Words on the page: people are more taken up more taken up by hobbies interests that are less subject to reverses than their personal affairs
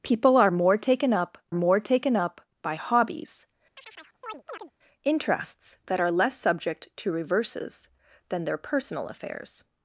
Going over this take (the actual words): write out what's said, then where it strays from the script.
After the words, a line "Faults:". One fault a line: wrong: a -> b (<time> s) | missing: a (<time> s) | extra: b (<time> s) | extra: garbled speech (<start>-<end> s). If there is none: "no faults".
people are more taken up more taken up by hobbies interests that are less subject to reverses than their personal affairs
Faults:
no faults